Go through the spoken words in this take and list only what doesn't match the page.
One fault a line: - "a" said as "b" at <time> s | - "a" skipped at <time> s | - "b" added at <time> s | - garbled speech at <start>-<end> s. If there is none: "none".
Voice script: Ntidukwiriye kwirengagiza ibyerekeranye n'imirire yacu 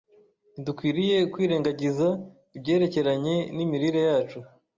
none